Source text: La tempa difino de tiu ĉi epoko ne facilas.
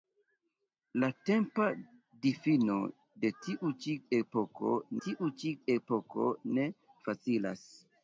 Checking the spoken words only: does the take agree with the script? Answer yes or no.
no